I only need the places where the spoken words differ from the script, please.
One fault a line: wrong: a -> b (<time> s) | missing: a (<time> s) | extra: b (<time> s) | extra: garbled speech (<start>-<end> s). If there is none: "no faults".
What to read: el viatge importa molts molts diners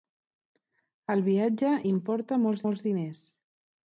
no faults